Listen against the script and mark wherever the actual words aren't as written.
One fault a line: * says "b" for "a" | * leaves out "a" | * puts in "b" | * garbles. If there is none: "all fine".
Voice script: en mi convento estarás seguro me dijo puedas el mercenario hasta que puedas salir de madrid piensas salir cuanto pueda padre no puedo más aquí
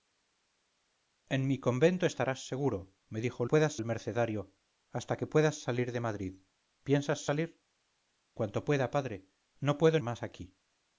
all fine